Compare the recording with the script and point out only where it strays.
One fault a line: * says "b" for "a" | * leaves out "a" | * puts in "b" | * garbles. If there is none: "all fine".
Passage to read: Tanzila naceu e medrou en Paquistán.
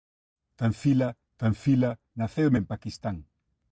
* puts in "tanzila"
* leaves out "medrou"